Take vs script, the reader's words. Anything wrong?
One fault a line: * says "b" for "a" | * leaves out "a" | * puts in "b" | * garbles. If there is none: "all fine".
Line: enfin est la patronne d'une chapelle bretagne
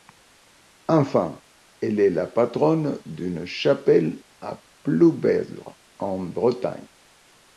* puts in "elle"
* puts in "à ploubezre en"